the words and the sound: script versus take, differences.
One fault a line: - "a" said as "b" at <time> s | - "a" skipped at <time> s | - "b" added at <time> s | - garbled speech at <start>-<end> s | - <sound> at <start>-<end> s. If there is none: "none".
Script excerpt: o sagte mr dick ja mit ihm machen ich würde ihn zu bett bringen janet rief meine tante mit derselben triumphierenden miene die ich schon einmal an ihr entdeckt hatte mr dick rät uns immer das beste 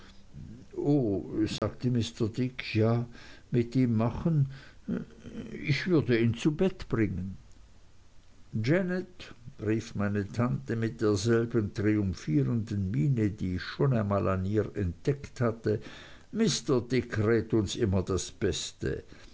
- dropout at 1.6-1.6 s